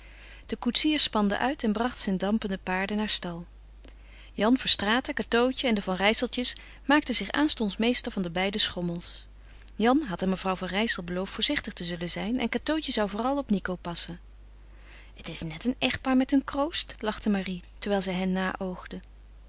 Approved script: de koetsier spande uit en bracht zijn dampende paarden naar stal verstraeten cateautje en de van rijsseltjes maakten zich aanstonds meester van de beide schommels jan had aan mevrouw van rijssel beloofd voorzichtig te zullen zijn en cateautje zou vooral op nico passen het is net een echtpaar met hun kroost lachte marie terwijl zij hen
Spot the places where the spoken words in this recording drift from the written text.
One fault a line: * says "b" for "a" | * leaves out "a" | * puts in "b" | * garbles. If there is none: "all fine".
* puts in "jan"